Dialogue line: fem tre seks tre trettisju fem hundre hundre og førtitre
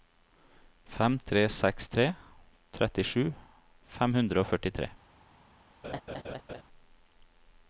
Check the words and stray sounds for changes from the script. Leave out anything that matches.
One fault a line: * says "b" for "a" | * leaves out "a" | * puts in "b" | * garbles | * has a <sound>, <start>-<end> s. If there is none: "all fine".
* leaves out "hundre"
* has a laugh, 5.8-6.6 s